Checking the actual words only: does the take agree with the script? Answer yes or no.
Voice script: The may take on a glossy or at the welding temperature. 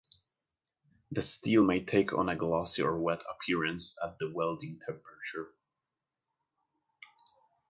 no